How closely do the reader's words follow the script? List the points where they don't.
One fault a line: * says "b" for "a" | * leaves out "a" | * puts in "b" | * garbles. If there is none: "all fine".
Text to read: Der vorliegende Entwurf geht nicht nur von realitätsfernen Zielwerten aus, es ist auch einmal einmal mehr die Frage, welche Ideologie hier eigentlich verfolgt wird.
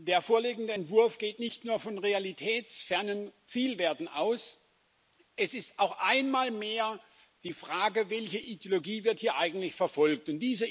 * leaves out "einmal"